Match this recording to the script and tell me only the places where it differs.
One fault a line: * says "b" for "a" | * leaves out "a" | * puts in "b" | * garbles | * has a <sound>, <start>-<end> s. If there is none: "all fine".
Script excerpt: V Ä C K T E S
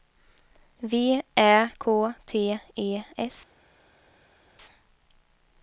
* leaves out "C"